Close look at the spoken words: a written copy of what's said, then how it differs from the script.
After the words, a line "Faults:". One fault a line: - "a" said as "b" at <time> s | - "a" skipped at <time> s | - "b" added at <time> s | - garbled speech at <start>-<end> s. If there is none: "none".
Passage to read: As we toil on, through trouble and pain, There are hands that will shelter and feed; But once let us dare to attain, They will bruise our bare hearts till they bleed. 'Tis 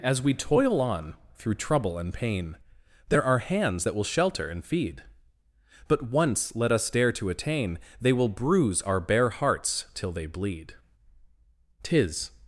As we toil on, through trouble and pain, There are hands that will shelter and feed; But once let us dare to attain, They will bruise our bare hearts till they bleed. 'Tis
Faults:
none